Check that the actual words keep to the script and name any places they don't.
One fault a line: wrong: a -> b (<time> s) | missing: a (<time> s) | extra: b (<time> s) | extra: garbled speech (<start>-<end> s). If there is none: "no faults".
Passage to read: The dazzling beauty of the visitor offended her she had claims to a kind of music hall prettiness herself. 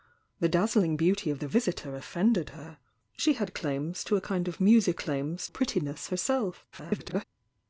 wrong: hall -> claims (5.0 s)
extra: garbled speech (6.7-7.2 s)